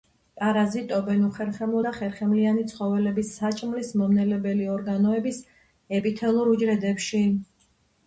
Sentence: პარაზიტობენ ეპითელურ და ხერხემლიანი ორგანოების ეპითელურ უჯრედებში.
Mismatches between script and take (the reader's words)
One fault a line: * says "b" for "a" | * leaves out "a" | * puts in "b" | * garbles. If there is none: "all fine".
* says "უხერხემლო" for "ეპითელურ"
* puts in "ცხოველების საჭმლის მომნელებელი"